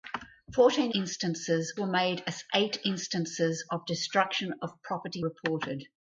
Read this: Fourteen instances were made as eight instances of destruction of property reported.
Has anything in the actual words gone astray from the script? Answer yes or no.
no